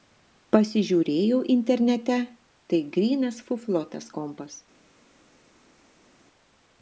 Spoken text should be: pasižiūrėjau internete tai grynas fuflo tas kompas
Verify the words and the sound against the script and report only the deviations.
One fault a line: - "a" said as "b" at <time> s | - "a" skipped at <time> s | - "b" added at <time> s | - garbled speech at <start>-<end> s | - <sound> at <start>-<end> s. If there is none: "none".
none